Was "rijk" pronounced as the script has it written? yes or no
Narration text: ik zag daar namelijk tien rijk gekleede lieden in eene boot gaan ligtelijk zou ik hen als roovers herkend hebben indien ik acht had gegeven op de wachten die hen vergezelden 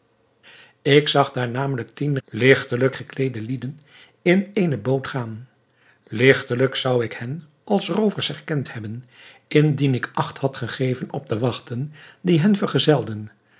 no